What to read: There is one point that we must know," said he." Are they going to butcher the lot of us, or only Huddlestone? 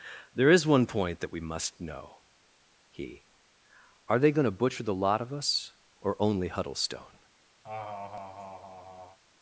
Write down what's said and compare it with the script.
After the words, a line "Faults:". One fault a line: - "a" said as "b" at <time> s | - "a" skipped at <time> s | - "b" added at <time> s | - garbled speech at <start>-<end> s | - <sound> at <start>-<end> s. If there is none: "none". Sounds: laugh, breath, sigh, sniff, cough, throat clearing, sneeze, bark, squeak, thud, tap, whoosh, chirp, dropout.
There is one point that we must know," he." Are they going to butcher the lot of us, or only Huddlestone?
Faults:
- "said" skipped at 2.2 s
- laugh at 7.6-9.2 s